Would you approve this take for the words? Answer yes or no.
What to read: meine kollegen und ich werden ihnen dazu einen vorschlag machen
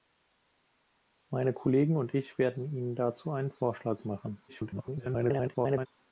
no